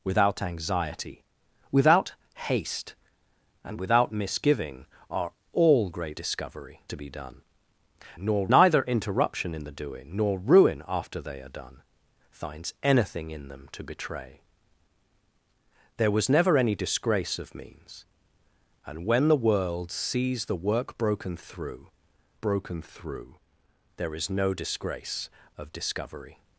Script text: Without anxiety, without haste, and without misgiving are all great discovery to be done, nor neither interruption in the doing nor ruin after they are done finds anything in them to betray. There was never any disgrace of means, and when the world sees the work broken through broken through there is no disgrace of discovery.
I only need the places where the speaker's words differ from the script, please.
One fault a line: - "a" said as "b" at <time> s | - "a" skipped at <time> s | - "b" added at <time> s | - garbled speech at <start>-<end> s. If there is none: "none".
none